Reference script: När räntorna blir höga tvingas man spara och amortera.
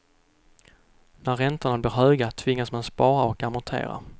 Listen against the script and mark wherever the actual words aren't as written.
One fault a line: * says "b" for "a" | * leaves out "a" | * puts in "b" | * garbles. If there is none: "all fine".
all fine